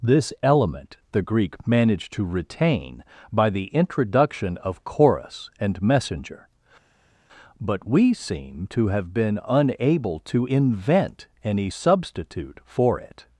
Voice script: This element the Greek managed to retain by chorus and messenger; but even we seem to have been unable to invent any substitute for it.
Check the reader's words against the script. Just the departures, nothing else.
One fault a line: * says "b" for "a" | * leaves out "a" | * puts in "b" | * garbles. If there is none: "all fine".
* puts in "the introduction of"
* leaves out "even"